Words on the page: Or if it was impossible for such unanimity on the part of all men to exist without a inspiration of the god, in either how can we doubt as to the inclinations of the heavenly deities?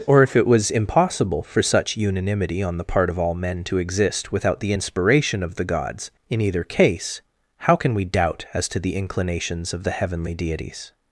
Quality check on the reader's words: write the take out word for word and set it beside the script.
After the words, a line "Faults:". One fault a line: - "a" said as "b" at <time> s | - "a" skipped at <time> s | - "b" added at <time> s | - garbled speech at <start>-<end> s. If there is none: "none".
Or if it was impossible for such unanimity on the part of all men to exist without the inspiration of the gods, in either case how can we doubt as to the inclinations of the heavenly deities?
Faults:
- "a" said as "the" at 4.6 s
- "god" said as "gods" at 5.6 s
- "case" added at 6.6 s